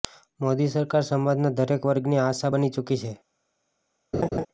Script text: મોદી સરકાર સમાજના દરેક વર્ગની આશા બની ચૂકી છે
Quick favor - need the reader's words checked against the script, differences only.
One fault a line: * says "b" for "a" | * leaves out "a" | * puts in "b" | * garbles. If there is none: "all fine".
all fine